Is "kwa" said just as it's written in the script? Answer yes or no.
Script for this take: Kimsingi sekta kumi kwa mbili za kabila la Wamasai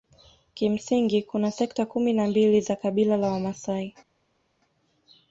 no